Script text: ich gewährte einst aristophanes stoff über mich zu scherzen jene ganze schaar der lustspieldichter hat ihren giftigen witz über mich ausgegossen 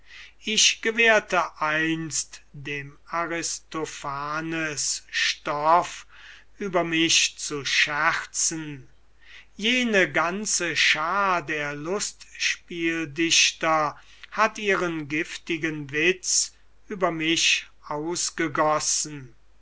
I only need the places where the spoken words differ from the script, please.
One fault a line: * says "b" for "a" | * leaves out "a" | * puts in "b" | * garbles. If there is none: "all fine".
* puts in "dem"